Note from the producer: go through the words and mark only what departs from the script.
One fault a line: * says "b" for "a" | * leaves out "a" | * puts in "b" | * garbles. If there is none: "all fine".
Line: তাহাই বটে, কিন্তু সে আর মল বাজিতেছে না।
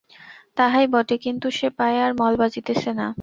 * puts in "পায়ে"